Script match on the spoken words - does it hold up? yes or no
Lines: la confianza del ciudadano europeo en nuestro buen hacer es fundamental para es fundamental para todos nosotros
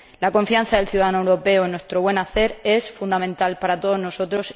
no